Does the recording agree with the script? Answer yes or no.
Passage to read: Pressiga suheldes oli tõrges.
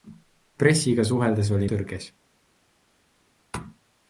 yes